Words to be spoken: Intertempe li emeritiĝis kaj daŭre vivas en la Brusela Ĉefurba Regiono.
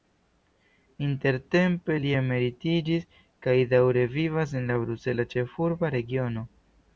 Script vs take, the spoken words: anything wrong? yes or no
no